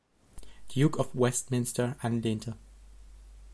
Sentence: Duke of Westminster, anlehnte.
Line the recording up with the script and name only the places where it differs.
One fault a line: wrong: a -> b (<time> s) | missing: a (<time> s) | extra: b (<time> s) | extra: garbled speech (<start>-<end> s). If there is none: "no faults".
no faults